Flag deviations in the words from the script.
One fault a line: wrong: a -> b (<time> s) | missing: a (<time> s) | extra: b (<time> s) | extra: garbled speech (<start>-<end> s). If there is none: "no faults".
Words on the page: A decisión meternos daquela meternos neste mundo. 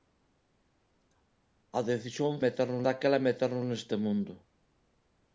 no faults